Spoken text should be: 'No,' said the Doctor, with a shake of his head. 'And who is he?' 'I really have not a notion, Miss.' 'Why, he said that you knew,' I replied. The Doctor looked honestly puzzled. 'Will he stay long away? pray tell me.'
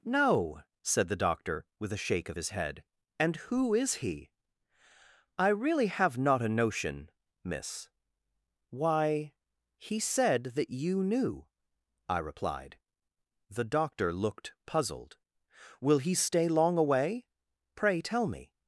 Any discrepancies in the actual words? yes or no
yes